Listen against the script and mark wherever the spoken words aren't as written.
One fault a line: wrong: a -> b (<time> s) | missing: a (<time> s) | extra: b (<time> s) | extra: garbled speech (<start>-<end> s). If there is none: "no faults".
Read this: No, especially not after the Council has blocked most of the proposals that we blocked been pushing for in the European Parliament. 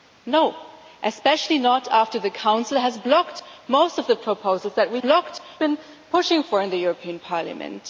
no faults